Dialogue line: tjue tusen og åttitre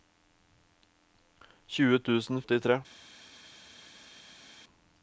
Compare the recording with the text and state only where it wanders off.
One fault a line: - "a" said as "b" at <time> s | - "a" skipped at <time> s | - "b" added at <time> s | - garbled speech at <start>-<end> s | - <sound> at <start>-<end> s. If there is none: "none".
none